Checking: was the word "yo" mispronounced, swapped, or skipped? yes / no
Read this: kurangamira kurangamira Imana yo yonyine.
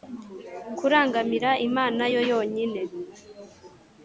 no